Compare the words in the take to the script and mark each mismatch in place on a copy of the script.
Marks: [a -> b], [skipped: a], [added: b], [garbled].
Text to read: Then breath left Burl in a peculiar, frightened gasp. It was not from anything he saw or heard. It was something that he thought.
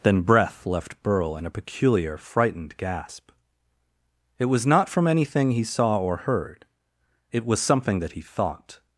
Then breath left Burl in a peculiar, frightened gasp. It was not from anything he saw or heard. It was something that he thought.